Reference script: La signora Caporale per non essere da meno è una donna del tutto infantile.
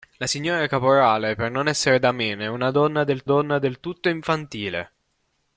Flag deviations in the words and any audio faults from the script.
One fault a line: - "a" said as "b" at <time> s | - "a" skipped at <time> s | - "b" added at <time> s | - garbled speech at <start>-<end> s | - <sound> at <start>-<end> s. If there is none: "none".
- "donna del" added at 3.2 s